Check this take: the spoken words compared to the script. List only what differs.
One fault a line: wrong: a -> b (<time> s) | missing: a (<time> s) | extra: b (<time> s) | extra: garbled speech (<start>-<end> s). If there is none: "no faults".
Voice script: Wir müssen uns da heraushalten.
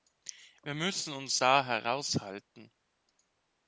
no faults